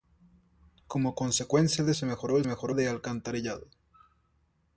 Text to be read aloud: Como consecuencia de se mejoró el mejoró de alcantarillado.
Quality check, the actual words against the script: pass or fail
pass